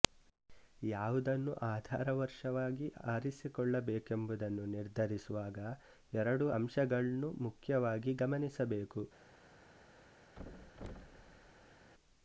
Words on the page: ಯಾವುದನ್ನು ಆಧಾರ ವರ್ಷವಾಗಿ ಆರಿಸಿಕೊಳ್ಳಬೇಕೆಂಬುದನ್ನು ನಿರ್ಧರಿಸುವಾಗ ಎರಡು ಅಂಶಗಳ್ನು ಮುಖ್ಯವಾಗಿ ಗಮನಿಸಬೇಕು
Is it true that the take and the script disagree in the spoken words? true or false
false